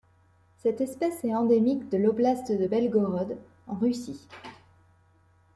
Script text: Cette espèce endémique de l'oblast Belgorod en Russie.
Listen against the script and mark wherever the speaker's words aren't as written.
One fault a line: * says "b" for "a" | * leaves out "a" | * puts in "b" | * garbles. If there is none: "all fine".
* puts in "est"
* puts in "de"